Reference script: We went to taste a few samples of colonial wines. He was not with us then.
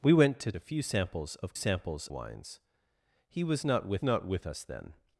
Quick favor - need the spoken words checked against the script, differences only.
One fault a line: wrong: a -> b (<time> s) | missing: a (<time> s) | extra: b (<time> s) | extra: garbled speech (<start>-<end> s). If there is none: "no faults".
missing: taste (0.5 s)
wrong: colonial -> samples (1.5 s)
extra: not with (4.0 s)